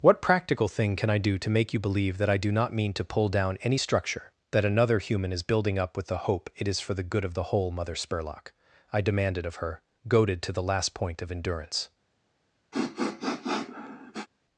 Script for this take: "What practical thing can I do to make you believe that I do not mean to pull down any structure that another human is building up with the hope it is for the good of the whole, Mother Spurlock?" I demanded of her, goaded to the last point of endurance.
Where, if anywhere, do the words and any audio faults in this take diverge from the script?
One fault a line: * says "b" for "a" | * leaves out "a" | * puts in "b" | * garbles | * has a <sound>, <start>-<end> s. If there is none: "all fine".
* has a sniff, 12.7-14.3 s